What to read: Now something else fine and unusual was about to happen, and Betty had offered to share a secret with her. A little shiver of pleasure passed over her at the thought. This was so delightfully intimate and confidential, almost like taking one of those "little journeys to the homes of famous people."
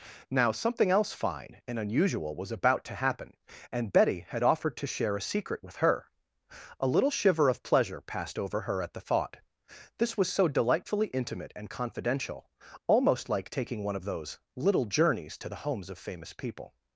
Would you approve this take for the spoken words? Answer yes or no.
yes